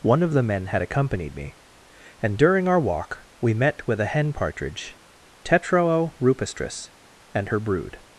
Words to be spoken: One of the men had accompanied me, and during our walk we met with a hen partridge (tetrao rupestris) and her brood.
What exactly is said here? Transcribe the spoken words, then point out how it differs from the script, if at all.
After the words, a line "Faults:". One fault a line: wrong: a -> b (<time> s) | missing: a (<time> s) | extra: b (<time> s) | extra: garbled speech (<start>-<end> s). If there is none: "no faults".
One of the men had accompanied me, and during our walk we met with a hen partridge (tetrao rupestris) and her brood.
Faults:
no faults